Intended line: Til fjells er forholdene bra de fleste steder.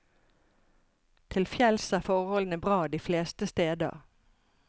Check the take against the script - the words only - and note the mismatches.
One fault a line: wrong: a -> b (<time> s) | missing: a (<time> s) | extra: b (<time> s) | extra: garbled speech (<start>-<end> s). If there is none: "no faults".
no faults